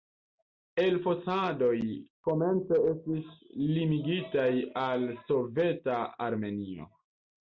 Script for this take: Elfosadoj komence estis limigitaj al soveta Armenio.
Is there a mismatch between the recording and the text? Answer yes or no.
no